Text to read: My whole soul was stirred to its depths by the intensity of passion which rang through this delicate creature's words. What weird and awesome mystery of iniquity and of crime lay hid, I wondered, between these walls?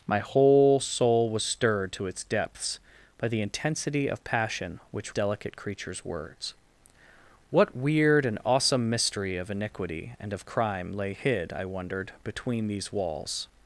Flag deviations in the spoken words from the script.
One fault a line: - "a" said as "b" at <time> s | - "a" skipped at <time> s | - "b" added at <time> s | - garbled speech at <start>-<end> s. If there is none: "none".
- "rang through this" skipped at 5.2 s